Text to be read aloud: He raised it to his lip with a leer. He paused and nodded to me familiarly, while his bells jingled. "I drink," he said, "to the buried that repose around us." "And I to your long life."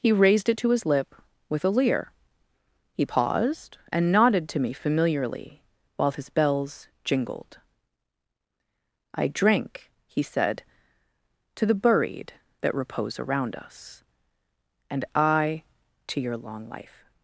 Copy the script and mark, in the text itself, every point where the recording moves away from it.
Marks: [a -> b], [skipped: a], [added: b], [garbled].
He raised it to his lip with a leer. He paused and nodded to me familiarly, while his bells jingled. "I drink," he said, "to the buried that repose around us." "And I to your long life."